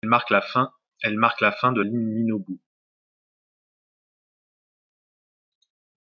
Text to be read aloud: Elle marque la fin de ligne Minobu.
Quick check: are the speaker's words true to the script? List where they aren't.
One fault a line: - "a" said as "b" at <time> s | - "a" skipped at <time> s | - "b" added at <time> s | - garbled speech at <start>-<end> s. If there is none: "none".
none